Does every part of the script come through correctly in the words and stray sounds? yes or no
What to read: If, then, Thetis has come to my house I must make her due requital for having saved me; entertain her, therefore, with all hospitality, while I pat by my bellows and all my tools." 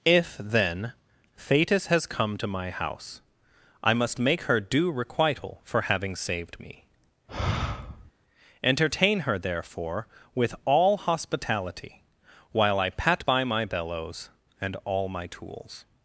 no